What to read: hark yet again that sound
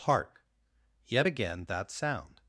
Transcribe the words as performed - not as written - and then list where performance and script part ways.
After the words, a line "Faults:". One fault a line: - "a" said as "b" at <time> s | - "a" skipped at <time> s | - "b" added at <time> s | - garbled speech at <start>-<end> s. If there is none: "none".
hark yet again that sound
Faults:
none